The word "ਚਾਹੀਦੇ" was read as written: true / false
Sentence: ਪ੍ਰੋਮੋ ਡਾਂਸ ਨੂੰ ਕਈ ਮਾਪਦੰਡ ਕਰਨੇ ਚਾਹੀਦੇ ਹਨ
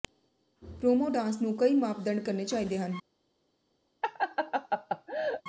true